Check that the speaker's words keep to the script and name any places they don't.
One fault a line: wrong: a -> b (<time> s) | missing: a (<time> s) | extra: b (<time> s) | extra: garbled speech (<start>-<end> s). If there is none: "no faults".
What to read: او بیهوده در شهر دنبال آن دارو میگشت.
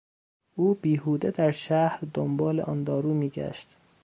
no faults